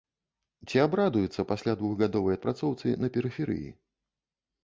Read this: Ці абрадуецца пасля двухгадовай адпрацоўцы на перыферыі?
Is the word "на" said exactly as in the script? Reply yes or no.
yes